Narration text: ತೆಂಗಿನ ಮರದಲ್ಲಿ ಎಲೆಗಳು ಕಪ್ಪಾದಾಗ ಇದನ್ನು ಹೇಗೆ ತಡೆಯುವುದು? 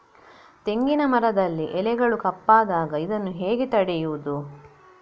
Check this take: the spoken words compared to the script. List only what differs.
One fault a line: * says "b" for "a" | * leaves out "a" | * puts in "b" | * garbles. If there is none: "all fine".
all fine